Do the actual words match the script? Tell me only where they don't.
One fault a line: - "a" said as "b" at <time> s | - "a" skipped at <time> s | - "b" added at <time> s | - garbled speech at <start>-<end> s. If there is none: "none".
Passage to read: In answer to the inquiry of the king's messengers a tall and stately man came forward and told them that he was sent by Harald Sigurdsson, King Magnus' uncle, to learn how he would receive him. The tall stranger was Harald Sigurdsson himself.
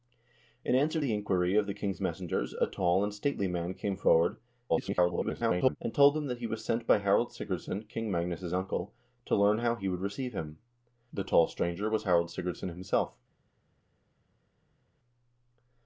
- "to" skipped at 1.0 s
- garbled speech at 4.7-5.8 s